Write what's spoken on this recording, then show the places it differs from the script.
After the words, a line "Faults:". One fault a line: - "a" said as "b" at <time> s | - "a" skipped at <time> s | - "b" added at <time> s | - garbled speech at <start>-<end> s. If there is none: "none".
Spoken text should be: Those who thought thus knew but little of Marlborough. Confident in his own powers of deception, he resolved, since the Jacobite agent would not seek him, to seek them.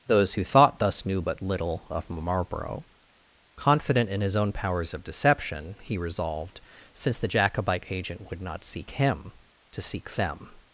Those who thought thus knew but little of Marlborough. Confident in his own powers of deception, he resolved, since the Jacobite agent would not seek him, to seek them.
Faults:
none